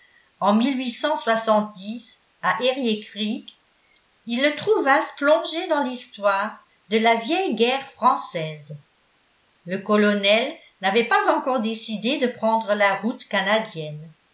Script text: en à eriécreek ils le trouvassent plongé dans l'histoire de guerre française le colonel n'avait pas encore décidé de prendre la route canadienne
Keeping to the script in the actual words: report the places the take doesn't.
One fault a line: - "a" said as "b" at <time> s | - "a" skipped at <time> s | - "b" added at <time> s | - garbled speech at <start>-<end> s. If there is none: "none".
- "la vieille" added at 7.0 s